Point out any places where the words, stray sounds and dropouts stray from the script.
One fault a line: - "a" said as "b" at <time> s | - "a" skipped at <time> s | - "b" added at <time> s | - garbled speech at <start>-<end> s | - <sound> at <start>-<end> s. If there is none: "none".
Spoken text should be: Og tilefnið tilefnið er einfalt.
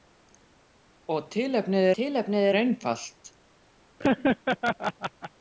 - laugh at 4.0-5.3 s